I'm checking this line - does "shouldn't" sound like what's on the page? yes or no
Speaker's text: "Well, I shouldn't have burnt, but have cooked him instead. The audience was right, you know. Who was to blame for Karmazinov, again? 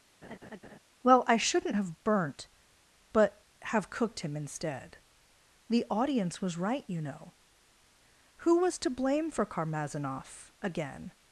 yes